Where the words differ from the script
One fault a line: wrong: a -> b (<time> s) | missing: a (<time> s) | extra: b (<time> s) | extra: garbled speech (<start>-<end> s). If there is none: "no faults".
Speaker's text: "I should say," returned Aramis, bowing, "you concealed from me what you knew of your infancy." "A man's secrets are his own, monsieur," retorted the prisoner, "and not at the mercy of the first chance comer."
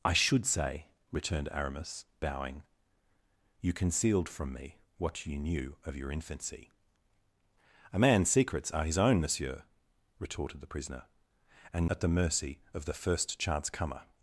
missing: not (11.9 s)